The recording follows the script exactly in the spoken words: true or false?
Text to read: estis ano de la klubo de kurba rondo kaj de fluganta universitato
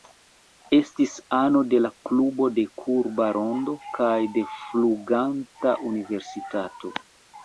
true